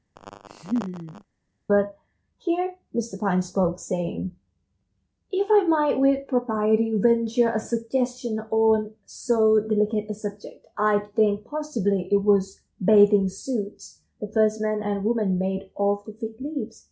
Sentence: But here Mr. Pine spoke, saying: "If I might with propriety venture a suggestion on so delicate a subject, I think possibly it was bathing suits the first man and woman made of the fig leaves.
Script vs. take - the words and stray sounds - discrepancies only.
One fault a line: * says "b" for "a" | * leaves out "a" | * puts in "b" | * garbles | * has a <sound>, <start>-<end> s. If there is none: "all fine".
* has a laugh, 0.2-1.2 s